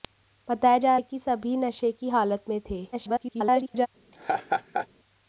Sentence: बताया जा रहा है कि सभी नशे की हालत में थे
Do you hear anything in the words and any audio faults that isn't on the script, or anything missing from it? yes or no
yes